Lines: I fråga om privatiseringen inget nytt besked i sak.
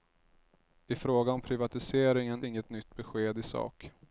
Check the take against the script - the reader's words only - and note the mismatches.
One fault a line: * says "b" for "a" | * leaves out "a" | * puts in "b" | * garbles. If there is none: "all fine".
all fine